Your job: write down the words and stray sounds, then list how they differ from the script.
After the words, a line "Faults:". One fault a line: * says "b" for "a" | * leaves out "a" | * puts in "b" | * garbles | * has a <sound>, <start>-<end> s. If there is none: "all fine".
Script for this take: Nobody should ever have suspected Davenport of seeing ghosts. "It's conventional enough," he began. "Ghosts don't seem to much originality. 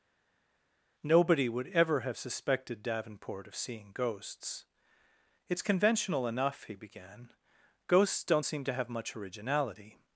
Nobody would ever have suspected Davenport of seeing ghosts. "It's conventional enough," he began. "Ghosts don't seem to have much originality.
Faults:
* says "would" for "should"
* puts in "have"